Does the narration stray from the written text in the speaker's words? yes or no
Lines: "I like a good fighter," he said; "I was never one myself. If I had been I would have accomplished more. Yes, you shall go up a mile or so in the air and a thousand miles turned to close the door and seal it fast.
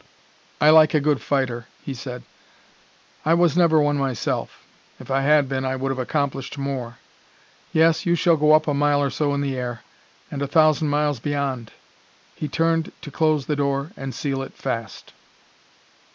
yes